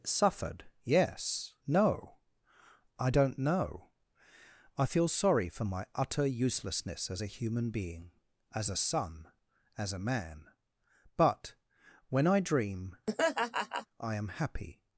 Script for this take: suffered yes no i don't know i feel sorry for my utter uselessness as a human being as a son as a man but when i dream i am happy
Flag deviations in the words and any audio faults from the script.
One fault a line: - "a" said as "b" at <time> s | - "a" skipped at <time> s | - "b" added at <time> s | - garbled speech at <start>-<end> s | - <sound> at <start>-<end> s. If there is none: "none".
- laugh at 13.1-13.9 s